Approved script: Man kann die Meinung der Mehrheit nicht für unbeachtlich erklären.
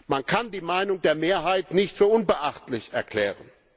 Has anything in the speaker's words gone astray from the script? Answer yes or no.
no